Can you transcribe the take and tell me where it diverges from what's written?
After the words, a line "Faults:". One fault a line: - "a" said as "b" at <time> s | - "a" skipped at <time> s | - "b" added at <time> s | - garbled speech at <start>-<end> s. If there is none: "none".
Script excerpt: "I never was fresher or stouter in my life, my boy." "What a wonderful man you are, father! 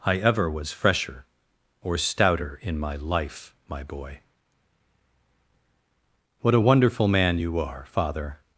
"I ever was fresher or stouter in my life, my boy." "What a wonderful man you are, father!
Faults:
- "never" said as "ever" at 0.2 s